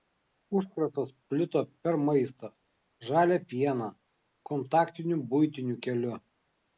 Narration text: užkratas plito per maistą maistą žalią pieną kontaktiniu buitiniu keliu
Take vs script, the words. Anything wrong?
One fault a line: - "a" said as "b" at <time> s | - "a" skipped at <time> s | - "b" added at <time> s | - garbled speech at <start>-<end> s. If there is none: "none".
- "maistą" skipped at 2.5 s